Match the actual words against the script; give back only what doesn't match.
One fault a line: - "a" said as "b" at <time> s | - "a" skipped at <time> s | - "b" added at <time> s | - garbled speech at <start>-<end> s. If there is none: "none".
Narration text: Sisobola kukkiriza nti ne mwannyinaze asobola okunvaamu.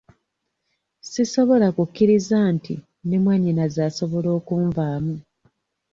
none